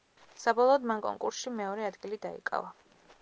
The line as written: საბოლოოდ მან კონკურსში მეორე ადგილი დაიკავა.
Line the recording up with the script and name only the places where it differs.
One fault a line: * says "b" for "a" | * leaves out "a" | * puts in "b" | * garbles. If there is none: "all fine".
all fine